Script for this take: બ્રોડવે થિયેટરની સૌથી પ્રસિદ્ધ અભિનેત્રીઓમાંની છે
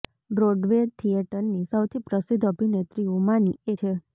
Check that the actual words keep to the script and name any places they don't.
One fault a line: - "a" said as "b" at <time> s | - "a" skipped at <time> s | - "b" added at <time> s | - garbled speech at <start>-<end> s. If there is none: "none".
none